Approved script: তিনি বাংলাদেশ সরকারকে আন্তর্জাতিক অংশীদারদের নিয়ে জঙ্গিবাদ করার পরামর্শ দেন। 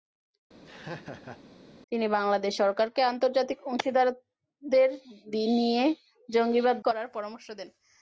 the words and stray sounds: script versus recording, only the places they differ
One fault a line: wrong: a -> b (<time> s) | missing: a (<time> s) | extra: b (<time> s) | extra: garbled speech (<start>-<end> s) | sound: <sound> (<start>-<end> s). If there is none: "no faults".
sound: laugh (0.7-1.4 s)